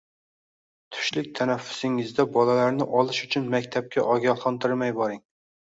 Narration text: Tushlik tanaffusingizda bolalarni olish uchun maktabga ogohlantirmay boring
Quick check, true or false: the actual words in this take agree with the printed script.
true